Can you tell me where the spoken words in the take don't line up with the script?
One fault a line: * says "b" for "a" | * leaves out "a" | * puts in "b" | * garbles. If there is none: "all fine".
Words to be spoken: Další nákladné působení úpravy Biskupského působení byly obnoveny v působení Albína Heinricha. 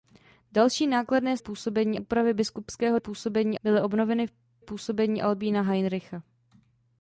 all fine